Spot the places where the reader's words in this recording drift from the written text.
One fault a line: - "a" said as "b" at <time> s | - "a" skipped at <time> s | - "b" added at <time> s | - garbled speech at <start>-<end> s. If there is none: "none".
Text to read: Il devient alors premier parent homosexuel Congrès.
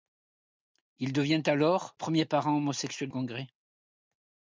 none